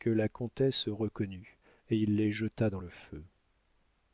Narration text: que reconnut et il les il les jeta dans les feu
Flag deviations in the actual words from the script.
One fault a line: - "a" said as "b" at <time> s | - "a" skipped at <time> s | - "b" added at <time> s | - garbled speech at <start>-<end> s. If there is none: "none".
- "la comtesse" added at 0.1 s
- "il les" skipped at 2.3 s
- "les" said as "le" at 2.8 s